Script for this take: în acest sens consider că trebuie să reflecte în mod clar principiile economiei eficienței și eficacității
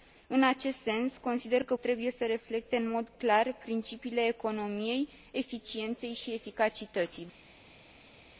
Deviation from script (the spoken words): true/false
false